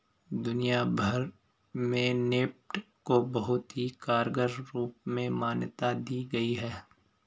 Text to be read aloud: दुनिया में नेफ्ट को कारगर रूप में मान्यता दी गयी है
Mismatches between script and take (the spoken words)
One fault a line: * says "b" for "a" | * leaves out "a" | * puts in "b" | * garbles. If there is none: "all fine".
* puts in "भर"
* puts in "बहुत ही"